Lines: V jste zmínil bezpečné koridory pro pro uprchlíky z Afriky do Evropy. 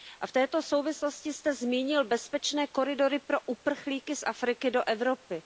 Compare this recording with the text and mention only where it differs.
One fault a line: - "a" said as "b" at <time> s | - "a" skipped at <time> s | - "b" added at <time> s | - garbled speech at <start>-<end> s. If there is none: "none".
- "této souvislosti" added at 0.3 s
- "pro" skipped at 3.4 s